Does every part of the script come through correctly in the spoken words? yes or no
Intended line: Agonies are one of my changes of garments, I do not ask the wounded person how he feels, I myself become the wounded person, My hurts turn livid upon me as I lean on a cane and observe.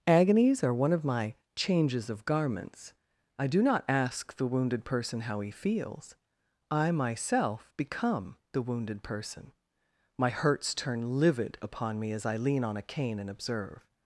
yes